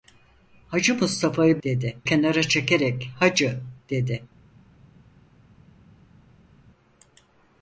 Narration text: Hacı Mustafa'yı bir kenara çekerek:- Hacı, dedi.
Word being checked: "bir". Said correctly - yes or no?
no